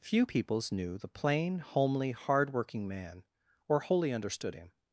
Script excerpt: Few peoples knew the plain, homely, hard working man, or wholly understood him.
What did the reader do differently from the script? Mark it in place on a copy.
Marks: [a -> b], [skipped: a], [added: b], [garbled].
Few peoples knew the plain, homely, hard working man, or wholly understood him.